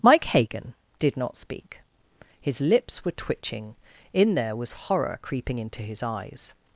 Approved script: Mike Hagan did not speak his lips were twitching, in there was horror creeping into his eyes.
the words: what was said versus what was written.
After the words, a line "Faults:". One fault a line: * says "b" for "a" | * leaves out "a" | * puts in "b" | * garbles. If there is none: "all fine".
Mike Hagan did not speak his lips were twitching, in there was horror creeping into his eyes.
Faults:
all fine